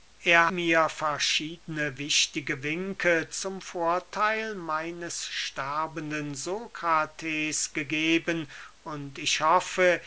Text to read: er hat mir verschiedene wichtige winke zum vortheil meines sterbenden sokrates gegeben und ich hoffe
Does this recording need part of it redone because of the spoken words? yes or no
yes